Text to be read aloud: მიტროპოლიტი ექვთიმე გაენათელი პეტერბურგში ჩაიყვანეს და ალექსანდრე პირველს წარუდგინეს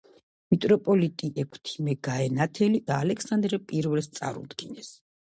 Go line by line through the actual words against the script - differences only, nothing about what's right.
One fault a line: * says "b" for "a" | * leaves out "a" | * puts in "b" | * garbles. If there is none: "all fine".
* leaves out "პეტერბურგში ჩაიყვანეს"